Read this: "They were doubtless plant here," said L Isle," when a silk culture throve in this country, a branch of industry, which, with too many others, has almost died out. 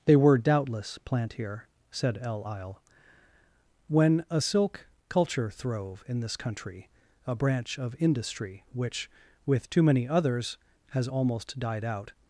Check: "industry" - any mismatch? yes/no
no